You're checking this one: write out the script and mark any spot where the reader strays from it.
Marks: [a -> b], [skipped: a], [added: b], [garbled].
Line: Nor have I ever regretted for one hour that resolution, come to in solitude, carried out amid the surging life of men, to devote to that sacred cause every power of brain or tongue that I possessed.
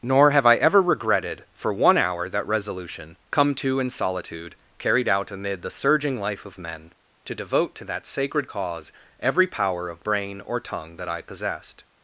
Nor have I ever regretted for one hour that resolution, come to in solitude, carried out amid the surging life of men, to devote to that sacred cause every power of brain or tongue that I possessed.